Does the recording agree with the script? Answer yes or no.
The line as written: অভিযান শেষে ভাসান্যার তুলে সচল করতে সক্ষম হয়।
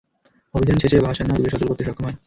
yes